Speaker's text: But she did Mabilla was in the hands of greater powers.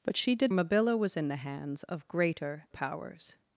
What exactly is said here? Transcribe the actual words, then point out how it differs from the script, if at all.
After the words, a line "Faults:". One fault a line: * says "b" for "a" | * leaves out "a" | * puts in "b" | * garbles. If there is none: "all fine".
But she did Mabilla was in the hands of greater powers.
Faults:
all fine